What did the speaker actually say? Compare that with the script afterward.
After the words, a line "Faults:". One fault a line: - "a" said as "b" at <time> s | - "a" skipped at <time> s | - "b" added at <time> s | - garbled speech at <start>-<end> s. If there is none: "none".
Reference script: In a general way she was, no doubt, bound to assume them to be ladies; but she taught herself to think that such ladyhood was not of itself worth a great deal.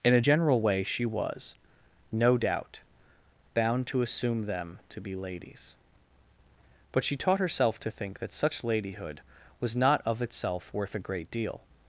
In a general way she was, no doubt, bound to assume them to be ladies; but she taught herself to think that such ladyhood was not of itself worth a great deal.
Faults:
none